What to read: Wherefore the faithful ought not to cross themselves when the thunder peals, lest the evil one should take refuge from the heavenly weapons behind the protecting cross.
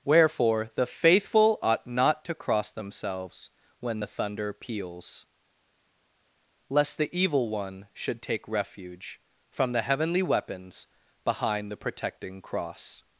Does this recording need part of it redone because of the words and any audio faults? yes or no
no